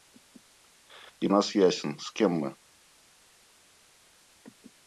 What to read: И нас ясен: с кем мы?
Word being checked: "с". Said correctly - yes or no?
yes